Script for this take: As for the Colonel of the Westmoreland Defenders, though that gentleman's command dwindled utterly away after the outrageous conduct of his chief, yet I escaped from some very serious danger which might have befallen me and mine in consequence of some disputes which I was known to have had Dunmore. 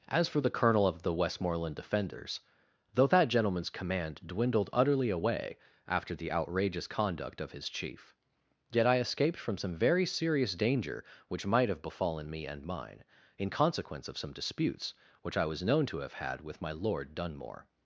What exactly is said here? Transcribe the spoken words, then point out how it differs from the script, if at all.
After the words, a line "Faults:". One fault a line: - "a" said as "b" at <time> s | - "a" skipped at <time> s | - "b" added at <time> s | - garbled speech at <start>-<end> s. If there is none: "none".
As for the Colonel of the Westmoreland Defenders, though that gentleman's command dwindled utterly away after the outrageous conduct of his chief, yet I escaped from some very serious danger which might have befallen me and mine in consequence of some disputes which I was known to have had with my Lord Dunmore.
Faults:
- "with my Lord" added at 16.4 s